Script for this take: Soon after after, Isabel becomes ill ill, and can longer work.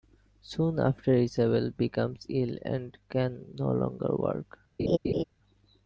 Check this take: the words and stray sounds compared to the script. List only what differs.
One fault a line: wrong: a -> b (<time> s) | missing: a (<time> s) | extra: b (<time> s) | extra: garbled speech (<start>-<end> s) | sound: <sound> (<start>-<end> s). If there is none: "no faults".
missing: after (1.1 s)
missing: ill (2.6 s)
extra: no (3.5 s)
sound: laugh (4.8-5.2 s)